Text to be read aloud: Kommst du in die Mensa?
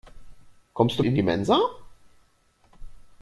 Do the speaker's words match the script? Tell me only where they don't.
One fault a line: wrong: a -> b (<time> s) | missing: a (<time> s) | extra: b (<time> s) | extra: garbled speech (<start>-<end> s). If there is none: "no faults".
no faults